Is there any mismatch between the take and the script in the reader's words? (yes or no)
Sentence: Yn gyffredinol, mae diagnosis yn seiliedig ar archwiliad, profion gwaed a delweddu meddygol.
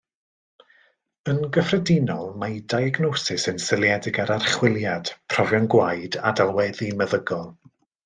no